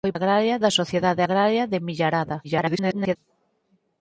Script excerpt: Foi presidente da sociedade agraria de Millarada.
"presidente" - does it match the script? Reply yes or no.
no